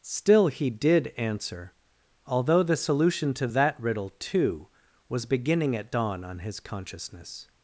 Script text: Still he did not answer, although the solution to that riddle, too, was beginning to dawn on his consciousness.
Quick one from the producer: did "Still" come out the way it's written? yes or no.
yes